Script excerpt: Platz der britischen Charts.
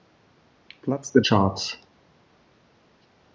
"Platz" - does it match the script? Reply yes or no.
yes